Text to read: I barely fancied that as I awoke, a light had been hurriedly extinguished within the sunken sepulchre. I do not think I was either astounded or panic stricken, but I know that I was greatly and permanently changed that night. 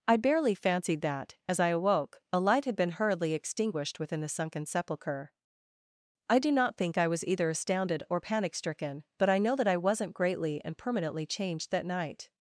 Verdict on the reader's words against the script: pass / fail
fail